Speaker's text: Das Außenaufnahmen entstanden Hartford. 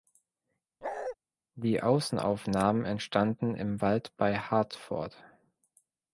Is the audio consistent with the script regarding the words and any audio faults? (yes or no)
no